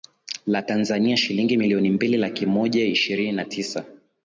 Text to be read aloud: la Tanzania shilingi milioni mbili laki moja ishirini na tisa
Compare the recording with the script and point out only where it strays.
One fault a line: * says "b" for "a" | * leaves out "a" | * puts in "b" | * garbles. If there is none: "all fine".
all fine